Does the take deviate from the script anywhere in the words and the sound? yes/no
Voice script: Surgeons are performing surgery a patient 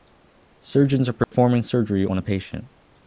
yes